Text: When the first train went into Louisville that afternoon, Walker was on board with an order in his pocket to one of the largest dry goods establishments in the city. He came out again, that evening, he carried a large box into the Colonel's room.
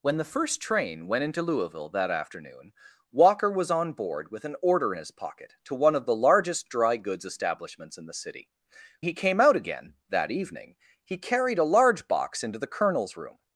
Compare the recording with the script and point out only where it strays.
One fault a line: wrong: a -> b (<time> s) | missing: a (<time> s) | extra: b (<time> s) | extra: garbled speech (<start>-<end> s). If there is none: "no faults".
no faults